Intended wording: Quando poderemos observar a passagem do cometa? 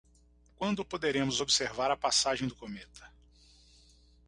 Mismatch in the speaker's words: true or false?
false